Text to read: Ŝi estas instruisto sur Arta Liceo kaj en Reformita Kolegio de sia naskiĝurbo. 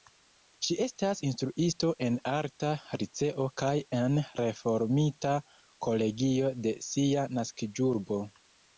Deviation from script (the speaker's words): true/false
true